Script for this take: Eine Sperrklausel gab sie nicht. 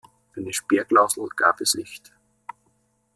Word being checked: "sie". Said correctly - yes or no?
no